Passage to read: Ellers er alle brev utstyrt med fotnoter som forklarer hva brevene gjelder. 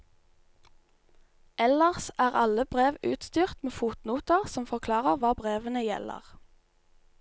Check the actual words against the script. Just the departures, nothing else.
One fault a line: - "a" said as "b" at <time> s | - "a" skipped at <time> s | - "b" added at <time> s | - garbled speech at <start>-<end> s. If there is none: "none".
none